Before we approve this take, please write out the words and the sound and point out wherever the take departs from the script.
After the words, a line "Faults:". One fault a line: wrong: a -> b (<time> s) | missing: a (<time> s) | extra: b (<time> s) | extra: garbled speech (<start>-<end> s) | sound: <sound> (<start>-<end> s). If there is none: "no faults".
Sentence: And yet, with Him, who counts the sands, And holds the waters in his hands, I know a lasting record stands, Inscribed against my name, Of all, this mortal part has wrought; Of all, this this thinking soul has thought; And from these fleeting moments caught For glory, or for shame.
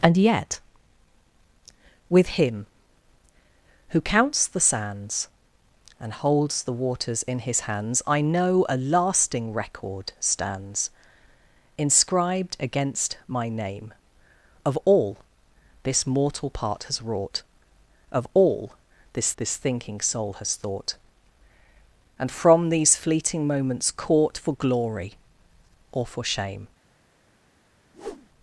And yet, with Him, who counts the sands, And holds the waters in his hands, I know a lasting record stands, Inscribed against my name, Of all, this mortal part has wrought; Of all, this this thinking soul has thought; And from these fleeting moments caught For glory, or for shame.
Faults:
sound: whoosh (27.9-28.3 s)